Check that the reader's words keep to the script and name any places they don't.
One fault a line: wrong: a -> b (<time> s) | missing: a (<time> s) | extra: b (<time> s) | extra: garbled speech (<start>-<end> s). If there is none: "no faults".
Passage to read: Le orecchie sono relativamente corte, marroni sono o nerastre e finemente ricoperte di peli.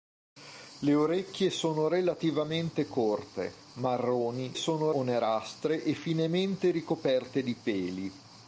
no faults